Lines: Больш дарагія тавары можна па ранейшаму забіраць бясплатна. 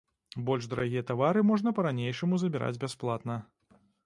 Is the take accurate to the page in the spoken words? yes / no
yes